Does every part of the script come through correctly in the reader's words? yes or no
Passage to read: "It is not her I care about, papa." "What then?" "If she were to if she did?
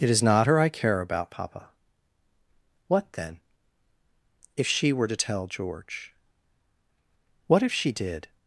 no